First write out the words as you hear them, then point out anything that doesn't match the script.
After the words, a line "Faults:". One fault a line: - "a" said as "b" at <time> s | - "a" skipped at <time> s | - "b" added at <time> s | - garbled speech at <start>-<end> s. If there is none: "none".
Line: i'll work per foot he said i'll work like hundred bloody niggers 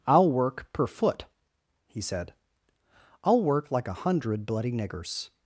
i'll work per foot he said i'll work like a hundred bloody niggers
Faults:
- "a" added at 3.9 s